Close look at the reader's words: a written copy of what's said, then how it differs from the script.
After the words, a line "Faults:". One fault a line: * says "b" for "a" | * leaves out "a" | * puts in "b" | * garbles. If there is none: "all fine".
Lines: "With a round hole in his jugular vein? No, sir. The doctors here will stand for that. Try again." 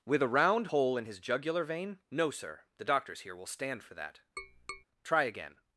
"With a round hole in his jugular vein? No, sir. The doctors here will stand for that. Try again."
Faults:
all fine